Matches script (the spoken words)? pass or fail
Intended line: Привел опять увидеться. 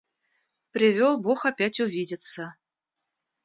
fail